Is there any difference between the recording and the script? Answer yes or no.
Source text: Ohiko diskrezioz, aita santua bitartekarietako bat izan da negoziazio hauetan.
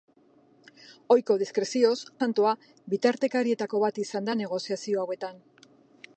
yes